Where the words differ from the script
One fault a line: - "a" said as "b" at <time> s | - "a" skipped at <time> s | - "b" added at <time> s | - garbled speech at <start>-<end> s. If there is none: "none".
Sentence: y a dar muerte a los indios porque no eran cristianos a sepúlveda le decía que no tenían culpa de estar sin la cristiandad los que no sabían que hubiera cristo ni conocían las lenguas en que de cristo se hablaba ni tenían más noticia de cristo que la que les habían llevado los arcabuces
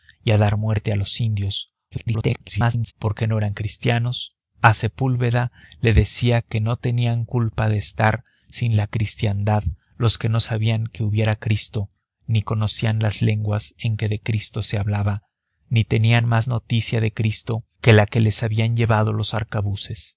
- garbled speech at 1.9-2.9 s